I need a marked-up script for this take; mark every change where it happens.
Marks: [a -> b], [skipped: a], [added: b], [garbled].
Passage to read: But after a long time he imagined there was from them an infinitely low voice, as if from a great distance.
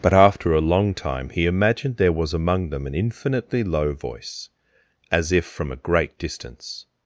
But after a long time he imagined there was [from -> among] them an infinitely low voice, as if from a great distance.